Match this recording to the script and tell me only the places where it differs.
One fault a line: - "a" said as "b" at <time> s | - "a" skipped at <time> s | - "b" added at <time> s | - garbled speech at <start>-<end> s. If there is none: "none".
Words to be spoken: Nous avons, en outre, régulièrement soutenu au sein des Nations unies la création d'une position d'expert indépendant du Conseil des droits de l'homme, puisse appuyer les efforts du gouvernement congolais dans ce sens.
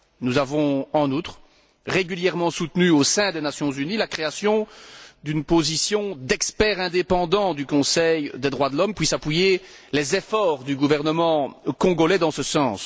none